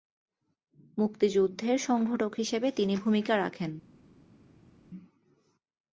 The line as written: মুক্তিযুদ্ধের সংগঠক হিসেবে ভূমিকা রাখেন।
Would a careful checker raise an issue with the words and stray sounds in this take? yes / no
yes